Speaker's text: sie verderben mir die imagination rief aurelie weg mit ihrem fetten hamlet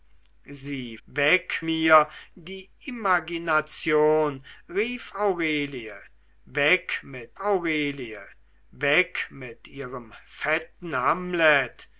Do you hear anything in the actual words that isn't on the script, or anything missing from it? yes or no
yes